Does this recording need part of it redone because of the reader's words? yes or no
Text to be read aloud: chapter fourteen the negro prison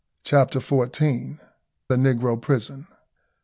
no